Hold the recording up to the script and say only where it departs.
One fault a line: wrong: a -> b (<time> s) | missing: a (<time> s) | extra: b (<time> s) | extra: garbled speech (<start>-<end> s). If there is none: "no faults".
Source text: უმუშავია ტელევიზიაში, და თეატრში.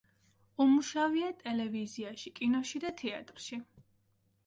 extra: კინოში (2.4 s)